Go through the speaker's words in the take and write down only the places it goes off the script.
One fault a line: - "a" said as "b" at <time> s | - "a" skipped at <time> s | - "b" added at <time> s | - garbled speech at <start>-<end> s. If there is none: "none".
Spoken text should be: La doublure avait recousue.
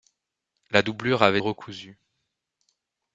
none